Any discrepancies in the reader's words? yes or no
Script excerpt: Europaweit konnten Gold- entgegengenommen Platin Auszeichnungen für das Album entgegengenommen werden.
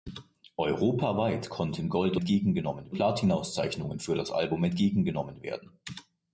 no